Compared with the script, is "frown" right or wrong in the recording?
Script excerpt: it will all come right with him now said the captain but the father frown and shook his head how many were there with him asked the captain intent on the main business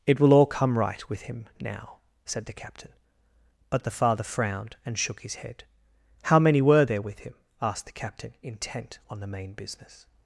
wrong